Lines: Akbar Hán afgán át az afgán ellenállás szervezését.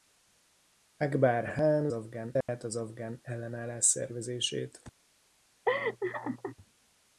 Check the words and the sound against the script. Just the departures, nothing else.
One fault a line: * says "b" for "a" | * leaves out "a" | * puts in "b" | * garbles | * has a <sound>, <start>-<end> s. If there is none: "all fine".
* has a dropout, 2.4-2.5 s
* has a laugh, 5.7-6.6 s